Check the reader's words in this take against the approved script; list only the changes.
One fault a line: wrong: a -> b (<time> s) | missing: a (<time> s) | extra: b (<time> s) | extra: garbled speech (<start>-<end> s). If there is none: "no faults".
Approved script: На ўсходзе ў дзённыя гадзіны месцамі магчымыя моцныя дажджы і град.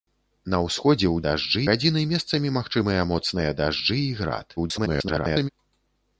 wrong: дзённыя -> дажджы (1.3 s)
extra: garbled speech (4.6-5.5 s)